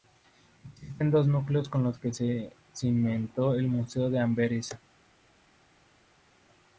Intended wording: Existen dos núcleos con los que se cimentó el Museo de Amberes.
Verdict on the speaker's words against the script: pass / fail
pass